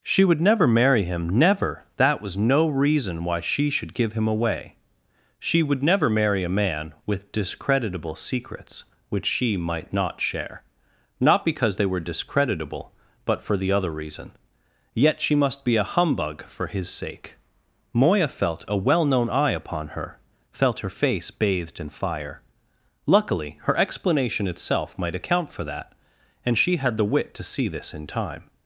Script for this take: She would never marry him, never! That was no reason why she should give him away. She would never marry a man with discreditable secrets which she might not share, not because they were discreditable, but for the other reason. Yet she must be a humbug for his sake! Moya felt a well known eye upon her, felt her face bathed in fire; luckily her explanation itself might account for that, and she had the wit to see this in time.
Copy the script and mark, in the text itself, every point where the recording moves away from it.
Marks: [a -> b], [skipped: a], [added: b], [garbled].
She would never marry him, never! That was no reason why she should give him away. She would never marry a man with discreditable secrets which she might not share, not because they were discreditable, but for the other reason. Yet she must be a humbug for his sake! Moya felt a well known eye upon her, felt her face bathed in fire; luckily her explanation itself might account for that, and she had the wit to see this in time.